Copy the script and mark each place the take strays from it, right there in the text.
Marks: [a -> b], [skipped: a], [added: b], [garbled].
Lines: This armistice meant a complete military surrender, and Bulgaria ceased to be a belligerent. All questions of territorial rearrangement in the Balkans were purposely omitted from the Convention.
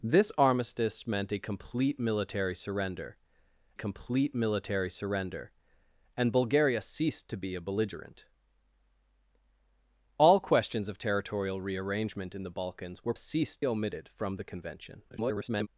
This armistice meant a complete military surrender, [added: complete military surrender] and Bulgaria ceased to be a belligerent. All questions of territorial rearrangement in the Balkans were [purposely -> ceased] omitted from the Convention. [garbled]